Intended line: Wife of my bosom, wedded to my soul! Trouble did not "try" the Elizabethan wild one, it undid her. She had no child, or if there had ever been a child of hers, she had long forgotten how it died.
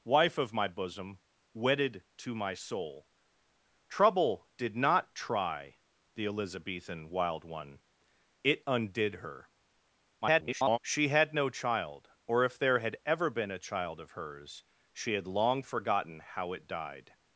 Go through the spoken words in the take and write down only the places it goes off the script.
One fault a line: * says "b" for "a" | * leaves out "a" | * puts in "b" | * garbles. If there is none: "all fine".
* garbles